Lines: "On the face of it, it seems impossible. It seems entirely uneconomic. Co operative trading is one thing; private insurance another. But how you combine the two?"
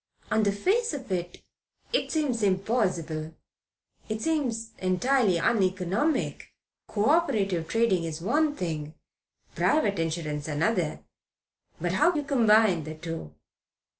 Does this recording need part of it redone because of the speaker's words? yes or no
no